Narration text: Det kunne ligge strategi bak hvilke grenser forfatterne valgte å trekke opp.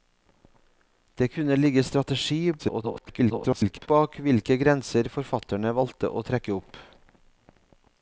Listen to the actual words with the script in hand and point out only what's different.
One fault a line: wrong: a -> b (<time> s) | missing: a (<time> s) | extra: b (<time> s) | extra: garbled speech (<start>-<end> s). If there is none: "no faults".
extra: garbled speech (2.6-3.9 s)